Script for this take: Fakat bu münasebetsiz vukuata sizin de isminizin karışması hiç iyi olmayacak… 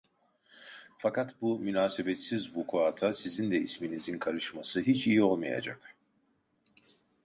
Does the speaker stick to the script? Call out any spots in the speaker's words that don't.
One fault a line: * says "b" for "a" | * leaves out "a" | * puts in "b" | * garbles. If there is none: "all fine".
all fine